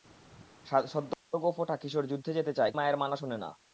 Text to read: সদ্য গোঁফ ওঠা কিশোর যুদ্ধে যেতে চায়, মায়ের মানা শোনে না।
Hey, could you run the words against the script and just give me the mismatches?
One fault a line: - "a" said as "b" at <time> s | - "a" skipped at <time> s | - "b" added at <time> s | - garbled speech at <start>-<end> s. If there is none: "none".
none